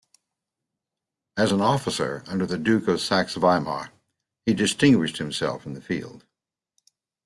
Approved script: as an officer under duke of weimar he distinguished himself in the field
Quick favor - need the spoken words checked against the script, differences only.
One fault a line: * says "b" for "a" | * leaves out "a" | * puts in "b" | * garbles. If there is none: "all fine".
* puts in "the"
* puts in "saxe"